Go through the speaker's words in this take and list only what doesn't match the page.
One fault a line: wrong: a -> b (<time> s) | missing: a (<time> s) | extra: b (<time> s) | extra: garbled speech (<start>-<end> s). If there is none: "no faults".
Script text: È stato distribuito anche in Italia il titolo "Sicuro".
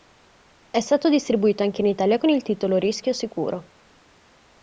extra: con (2.1 s)
extra: Rischio (2.8 s)